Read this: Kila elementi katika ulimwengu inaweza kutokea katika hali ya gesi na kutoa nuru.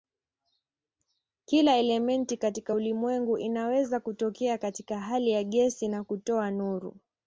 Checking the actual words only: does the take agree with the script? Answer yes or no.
yes